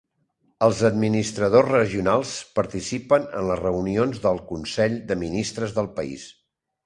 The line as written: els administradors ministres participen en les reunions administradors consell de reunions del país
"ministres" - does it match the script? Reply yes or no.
no